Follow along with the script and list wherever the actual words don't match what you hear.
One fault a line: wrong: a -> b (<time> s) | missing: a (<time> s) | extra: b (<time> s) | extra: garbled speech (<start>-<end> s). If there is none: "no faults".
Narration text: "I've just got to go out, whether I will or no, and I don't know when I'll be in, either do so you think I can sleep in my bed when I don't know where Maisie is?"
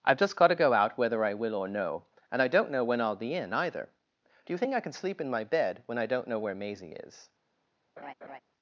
missing: so (4.5 s)